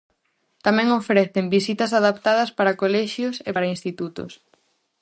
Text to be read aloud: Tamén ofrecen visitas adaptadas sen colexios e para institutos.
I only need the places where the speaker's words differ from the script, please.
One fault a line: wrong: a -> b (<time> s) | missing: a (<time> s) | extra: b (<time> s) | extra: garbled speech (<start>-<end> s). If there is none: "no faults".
wrong: sen -> para (2.6 s)